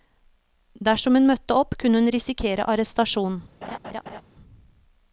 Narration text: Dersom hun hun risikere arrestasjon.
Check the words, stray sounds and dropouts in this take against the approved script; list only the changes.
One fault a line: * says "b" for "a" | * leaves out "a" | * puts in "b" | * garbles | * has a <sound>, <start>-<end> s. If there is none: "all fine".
* puts in "møtte opp kunne"
* has a laugh, 3.6-4.2 s